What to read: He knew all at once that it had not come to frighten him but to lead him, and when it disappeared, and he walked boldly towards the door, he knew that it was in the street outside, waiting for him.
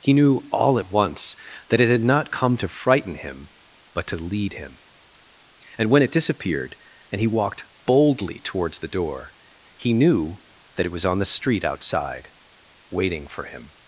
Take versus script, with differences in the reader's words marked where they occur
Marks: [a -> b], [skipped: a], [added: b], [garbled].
He knew all at once that it had not come to frighten him but to lead him, and when it disappeared, and he walked boldly towards the door, he knew that it was [in -> on] the street outside, waiting for him.